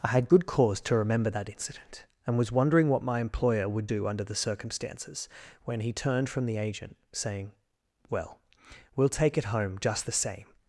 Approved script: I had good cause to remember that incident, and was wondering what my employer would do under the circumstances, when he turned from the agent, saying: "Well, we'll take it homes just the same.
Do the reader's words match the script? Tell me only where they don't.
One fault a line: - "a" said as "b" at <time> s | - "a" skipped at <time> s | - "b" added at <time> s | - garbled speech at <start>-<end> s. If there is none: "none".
- "homes" said as "home" at 9.5 s